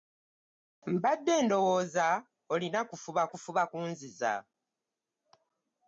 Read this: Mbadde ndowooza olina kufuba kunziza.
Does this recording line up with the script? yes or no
no